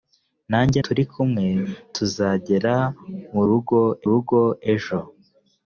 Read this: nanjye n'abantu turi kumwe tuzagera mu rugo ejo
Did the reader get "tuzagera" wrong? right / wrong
right